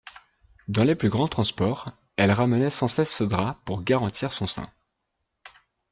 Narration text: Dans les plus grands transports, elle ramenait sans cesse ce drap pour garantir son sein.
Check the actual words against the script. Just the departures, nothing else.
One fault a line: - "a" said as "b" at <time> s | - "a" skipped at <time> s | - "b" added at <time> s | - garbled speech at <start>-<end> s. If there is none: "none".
none